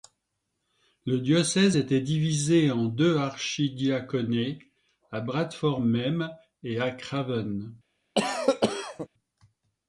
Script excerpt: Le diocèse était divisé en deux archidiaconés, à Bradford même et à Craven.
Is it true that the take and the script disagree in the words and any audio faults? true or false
true